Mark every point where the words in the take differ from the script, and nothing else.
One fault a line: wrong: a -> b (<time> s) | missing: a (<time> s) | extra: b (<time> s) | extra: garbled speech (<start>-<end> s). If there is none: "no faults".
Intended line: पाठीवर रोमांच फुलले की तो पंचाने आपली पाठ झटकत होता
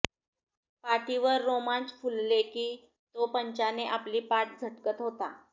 no faults